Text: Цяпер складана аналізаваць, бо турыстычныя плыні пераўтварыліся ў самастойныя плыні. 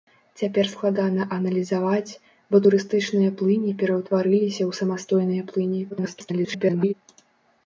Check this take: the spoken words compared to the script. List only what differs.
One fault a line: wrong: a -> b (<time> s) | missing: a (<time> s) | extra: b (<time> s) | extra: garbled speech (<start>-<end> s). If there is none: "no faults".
extra: garbled speech (5.9-6.9 s)